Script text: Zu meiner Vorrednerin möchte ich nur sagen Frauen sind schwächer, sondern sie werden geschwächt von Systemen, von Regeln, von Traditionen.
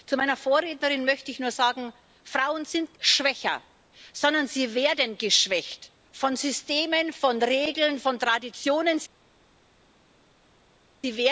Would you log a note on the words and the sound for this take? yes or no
no